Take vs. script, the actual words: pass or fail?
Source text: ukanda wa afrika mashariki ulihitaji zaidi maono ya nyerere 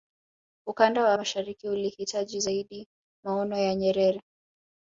fail